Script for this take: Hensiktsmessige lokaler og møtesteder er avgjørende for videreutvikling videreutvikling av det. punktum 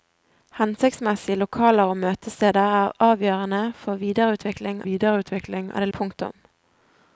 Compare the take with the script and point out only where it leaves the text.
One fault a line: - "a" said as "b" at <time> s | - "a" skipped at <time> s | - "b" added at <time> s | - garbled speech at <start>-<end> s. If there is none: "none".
none